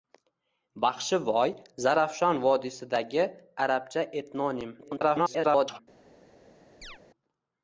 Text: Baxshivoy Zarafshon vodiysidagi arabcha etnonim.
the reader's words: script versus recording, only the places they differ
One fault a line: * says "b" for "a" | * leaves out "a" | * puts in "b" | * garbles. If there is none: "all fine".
* garbles